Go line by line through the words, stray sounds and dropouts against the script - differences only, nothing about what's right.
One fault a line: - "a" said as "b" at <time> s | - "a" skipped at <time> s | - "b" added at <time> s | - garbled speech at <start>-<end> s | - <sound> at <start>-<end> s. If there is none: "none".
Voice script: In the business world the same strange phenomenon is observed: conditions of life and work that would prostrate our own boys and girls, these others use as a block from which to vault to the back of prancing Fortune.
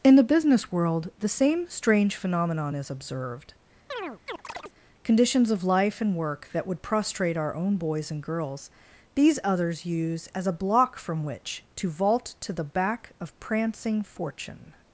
- chirp at 3.9-4.7 s